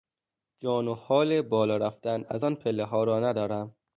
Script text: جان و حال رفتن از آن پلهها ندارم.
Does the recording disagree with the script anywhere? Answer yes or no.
yes